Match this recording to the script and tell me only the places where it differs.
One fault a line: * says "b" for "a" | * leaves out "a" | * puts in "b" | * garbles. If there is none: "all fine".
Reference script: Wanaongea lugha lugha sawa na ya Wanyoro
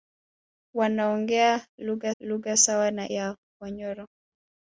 all fine